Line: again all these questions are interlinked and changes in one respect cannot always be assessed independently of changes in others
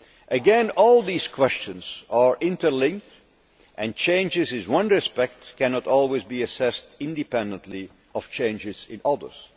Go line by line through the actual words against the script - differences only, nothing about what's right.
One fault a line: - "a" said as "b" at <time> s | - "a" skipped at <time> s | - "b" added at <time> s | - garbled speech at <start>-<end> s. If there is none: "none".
none